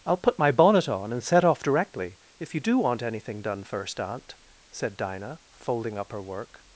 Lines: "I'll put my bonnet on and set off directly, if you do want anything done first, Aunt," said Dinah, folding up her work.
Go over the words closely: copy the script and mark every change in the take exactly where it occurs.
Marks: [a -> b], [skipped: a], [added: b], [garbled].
"I'll put my bonnet on and set off directly, if you do want anything done first, Aunt," said Dinah, folding up her work.